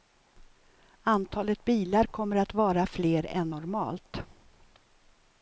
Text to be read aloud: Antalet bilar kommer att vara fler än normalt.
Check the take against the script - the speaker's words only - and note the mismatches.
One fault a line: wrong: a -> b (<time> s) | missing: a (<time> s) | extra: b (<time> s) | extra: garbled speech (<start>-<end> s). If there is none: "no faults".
no faults